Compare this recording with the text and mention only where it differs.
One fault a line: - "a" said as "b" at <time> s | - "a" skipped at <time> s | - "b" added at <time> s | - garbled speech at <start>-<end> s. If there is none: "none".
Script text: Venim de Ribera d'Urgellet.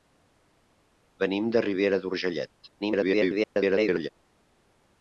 - garbled speech at 2.8-4.1 s